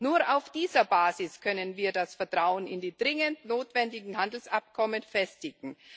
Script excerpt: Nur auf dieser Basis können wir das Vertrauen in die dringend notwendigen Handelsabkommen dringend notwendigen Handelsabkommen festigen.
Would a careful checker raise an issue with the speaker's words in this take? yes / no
yes